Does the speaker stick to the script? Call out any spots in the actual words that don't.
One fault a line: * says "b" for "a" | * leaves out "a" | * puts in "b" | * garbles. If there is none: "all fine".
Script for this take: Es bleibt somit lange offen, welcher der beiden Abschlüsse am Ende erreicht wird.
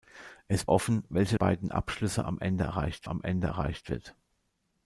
* leaves out "bleibt somit lange"
* leaves out "der"
* puts in "am Ende erreicht"